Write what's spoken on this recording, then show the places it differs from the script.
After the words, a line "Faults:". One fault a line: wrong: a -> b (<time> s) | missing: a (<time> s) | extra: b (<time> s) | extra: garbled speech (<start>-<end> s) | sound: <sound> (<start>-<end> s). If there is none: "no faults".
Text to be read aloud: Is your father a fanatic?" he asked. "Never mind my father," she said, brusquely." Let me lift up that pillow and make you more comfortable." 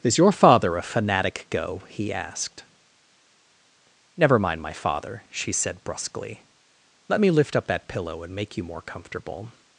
Is your father a fanatic?" go he asked. "Never mind my father," she said, brusquely." Let me lift up that pillow and make you more comfortable."
Faults:
extra: go (1.5 s)